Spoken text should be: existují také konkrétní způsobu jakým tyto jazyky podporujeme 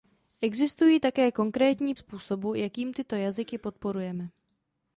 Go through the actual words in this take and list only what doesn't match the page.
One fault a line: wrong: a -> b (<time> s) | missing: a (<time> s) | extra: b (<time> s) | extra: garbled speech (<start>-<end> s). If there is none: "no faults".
no faults